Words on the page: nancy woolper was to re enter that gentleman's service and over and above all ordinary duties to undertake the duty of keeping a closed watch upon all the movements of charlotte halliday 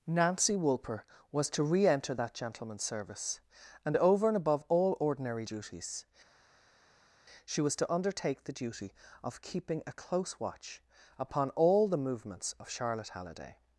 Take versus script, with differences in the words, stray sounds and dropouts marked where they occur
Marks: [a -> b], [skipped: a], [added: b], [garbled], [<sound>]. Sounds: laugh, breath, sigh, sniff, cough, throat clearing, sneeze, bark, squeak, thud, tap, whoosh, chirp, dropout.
nancy woolper was to re enter that gentleman's service and over and above all ordinary duties [added: she was] to undertake the duty of keeping a [closed -> close] watch upon all the movements of charlotte halliday